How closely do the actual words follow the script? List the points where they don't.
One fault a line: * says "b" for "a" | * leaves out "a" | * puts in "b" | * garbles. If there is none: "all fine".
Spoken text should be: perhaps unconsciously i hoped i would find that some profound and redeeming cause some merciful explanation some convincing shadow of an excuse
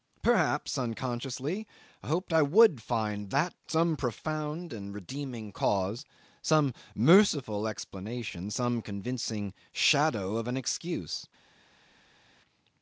all fine